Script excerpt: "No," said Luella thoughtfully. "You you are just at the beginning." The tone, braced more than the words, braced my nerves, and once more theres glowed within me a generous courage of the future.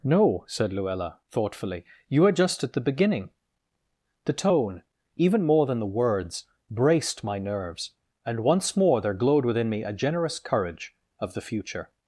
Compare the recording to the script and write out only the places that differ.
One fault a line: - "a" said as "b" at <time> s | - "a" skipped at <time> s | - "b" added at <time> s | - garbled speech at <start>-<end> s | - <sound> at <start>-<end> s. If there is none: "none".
- "you" skipped at 2.2 s
- "braced" said as "even" at 5.2 s
- "theres" said as "there" at 9.0 s